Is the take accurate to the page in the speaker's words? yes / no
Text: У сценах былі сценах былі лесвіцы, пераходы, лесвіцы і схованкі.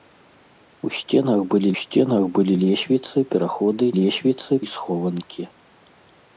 yes